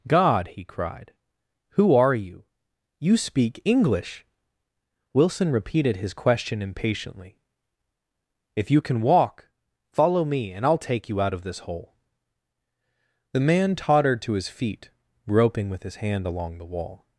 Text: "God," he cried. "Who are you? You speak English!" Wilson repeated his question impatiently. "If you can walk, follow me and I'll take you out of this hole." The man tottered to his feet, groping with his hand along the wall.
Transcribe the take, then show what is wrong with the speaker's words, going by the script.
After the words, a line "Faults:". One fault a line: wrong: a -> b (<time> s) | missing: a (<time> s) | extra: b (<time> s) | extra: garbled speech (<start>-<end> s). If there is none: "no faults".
"God," he cried. "Who are you? You speak English!" Wilson repeated his question impatiently. "If you can walk, follow me and I'll take you out of this hole." The man tottered to his feet, groping with his hand along the wall.
Faults:
no faults